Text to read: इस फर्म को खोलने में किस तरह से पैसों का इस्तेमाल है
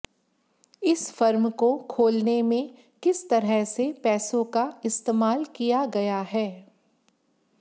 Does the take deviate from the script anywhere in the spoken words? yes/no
yes